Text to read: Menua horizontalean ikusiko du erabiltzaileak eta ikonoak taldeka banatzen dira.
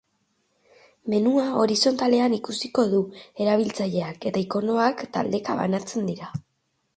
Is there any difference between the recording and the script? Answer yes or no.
no